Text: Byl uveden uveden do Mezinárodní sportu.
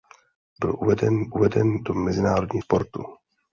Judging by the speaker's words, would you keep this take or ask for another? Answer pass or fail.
pass